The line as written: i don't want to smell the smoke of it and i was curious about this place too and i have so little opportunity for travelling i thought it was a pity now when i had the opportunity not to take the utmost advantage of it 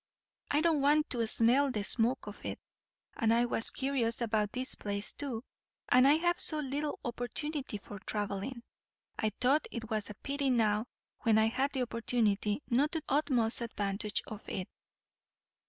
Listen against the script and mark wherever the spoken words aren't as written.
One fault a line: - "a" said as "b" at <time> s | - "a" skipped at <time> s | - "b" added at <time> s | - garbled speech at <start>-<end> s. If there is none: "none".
- "take the" skipped at 13.0 s